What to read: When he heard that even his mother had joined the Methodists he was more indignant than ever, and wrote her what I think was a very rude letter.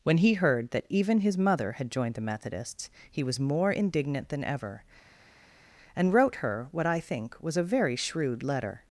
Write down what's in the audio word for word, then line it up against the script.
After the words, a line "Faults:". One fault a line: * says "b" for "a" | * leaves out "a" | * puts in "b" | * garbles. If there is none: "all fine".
When he heard that even his mother had joined the Methodists he was more indignant than ever, and wrote her what I think was a very shrewd letter.
Faults:
* says "shrewd" for "rude"